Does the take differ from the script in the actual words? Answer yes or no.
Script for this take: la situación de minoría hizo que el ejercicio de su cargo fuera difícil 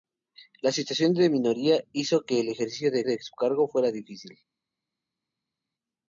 yes